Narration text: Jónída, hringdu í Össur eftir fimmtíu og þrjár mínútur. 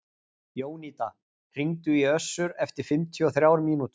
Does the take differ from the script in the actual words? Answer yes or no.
no